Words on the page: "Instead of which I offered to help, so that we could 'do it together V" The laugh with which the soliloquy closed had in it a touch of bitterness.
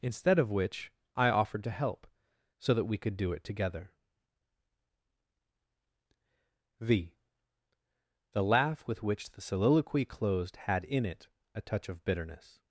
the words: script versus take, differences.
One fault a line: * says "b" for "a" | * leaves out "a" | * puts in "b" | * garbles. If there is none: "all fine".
all fine